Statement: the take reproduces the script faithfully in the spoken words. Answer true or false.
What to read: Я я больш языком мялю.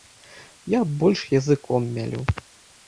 false